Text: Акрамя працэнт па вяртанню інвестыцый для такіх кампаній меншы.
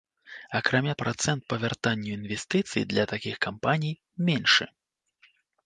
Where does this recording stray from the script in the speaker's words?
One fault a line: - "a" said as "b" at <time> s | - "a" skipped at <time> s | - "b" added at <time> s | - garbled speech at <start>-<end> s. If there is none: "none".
none